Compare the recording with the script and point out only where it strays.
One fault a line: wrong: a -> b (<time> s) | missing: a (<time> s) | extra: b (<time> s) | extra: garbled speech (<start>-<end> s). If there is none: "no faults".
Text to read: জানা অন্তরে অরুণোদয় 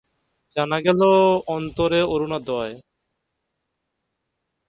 extra: গেল (0.9 s)